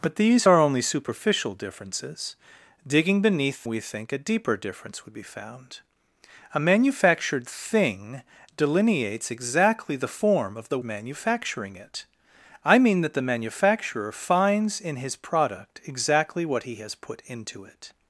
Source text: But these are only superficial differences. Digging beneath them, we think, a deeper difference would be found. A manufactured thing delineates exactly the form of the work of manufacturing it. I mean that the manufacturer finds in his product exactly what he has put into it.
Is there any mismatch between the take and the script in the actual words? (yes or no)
yes